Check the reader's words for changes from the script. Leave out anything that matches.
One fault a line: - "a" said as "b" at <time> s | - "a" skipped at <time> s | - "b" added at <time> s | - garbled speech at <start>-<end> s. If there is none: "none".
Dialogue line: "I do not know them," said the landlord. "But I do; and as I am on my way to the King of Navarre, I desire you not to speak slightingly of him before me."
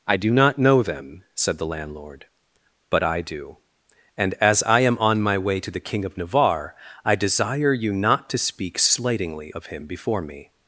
none